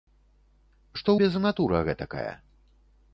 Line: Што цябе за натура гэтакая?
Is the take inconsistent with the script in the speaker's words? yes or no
no